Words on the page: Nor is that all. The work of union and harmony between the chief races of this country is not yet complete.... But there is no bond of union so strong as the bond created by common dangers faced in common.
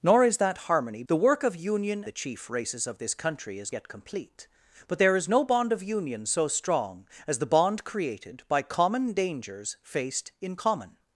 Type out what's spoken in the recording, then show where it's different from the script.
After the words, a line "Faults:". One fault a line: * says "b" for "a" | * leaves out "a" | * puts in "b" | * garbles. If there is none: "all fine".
Nor is that harmony. The work of union the chief races of this country is yet complete.... But there is no bond of union so strong as the bond created by common dangers faced in common.
Faults:
* says "harmony" for "all"
* leaves out "and harmony between"
* leaves out "not"